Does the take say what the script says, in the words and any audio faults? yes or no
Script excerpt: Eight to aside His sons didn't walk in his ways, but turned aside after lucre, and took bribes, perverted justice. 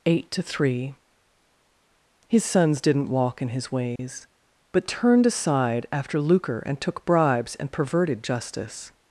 no